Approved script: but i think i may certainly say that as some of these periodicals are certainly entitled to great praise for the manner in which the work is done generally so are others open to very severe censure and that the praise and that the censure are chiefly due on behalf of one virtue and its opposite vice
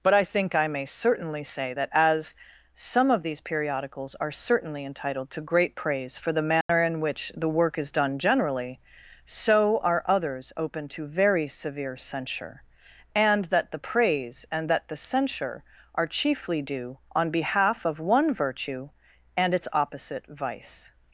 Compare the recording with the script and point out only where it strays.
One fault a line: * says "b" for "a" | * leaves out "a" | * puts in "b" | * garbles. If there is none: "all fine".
all fine